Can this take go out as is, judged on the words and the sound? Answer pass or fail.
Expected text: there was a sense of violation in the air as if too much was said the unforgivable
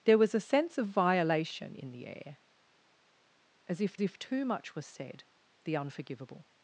fail